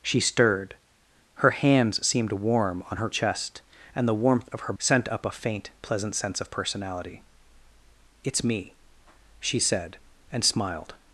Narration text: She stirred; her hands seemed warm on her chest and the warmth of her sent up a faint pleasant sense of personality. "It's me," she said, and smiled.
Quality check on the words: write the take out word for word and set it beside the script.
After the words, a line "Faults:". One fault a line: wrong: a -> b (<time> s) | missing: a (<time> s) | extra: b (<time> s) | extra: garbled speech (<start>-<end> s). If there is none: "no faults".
She stirred; her hands seemed warm on her chest and the warmth of her sent up a faint pleasant sense of personality. "It's me," she said, and smiled.
Faults:
no faults